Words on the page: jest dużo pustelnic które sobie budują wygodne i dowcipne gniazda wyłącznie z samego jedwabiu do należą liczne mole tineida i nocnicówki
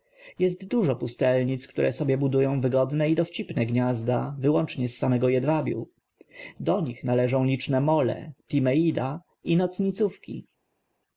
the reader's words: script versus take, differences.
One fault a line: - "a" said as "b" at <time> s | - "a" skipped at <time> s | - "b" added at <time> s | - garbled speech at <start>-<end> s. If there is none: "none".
- "nich" added at 6.8 s